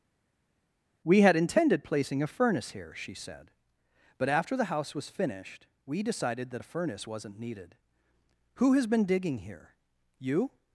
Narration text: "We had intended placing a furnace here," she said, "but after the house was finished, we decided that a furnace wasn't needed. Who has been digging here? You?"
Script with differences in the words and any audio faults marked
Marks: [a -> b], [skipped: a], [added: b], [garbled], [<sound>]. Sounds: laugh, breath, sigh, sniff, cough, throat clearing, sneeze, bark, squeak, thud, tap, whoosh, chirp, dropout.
"We had intended placing a furnace here," she said, "but after the house was finished, we decided that a furnace wasn't needed. Who has been digging here? You?"